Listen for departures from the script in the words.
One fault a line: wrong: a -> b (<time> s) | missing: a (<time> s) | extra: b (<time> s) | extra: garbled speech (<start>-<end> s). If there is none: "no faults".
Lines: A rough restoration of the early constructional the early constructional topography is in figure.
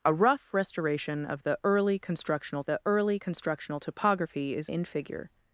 no faults